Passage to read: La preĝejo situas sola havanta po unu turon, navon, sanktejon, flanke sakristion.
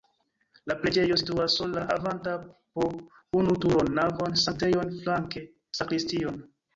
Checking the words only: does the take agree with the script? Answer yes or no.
yes